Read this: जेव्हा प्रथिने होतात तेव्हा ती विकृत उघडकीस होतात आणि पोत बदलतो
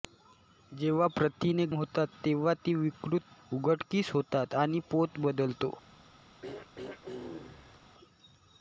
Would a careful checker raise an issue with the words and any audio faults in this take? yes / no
yes